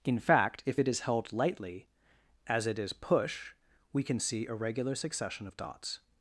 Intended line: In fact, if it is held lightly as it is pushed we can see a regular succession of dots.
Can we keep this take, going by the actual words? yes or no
no